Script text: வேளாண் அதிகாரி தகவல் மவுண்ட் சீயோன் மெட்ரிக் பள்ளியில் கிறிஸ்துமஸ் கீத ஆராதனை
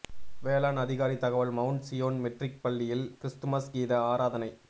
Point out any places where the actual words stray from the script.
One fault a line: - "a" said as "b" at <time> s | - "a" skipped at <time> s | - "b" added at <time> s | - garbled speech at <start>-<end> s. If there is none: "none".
none